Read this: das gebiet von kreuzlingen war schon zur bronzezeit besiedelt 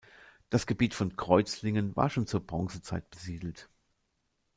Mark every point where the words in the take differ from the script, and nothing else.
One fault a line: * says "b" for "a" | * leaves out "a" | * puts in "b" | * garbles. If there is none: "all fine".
all fine